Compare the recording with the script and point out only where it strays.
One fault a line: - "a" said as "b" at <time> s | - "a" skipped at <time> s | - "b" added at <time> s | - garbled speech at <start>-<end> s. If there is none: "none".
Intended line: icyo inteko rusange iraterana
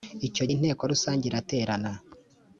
none